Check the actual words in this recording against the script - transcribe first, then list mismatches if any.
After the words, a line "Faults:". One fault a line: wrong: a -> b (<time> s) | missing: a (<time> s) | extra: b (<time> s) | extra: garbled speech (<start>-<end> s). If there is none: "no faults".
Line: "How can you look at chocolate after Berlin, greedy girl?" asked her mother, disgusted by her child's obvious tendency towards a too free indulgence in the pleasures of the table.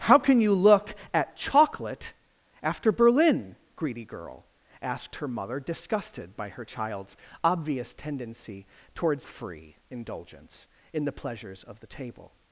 "How can you look at chocolate after Berlin, greedy girl?" asked her mother, disgusted by her child's obvious tendency towards free indulgence in the pleasures of the table.
Faults:
missing: a too (9.3 s)